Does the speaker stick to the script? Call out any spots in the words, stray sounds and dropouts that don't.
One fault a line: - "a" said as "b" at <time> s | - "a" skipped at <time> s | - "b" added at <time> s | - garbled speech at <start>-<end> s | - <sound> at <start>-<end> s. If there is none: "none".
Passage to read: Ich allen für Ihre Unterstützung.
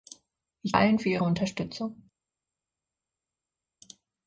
none